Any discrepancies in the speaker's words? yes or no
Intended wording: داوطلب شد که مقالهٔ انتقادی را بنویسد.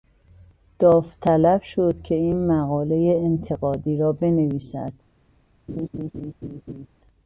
yes